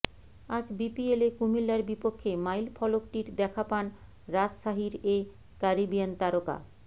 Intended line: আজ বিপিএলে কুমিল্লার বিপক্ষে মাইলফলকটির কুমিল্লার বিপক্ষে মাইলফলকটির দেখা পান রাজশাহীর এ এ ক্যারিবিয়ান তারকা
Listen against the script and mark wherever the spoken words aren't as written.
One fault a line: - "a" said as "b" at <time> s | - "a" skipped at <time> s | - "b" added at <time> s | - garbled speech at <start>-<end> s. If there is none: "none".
- "কুমিল্লার বিপক্ষে মাইলফলকটির" skipped at 3.3 s
- "এ" skipped at 5.2 s